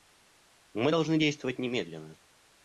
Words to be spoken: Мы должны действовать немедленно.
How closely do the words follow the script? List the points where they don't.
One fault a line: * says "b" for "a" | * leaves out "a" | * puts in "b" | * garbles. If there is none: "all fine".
all fine